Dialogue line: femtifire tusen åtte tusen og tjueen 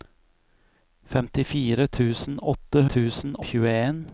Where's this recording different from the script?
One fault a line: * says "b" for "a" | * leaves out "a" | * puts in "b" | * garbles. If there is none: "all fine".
all fine